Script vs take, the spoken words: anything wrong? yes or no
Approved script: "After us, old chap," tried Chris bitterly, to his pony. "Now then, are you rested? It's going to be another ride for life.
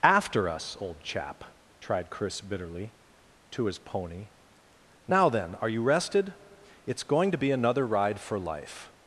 no